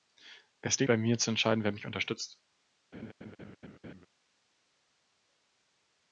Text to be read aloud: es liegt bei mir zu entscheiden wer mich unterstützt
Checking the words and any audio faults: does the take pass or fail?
fail